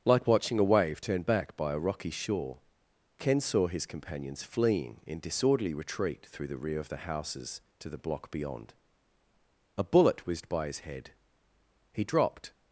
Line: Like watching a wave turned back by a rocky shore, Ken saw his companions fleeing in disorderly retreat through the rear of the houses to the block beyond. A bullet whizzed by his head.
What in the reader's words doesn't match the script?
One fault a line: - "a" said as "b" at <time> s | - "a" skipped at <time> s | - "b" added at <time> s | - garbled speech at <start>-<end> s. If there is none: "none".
- "He dropped" added at 11.9 s